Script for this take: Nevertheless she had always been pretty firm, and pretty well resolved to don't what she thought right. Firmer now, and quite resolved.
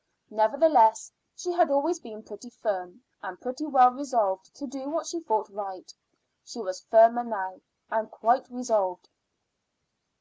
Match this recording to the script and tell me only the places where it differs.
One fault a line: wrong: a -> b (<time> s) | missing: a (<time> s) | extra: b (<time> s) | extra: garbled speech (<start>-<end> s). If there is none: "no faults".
wrong: don't -> do (4.7 s)
extra: She was (6.4 s)